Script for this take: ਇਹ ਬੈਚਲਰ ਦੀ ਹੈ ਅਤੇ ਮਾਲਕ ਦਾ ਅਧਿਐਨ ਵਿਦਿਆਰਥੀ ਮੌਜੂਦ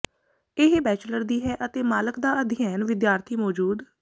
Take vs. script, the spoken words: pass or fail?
pass